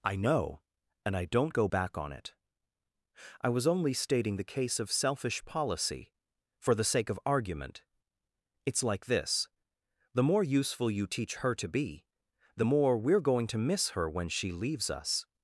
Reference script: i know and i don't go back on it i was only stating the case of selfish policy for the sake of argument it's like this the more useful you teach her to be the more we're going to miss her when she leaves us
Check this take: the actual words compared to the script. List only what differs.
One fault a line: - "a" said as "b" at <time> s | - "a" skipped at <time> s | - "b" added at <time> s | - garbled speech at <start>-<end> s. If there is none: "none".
none